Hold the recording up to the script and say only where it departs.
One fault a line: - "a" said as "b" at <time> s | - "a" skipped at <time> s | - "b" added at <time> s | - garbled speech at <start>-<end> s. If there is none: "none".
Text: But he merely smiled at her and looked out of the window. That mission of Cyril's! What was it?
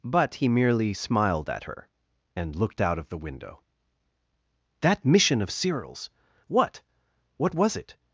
- "What" added at 7.4 s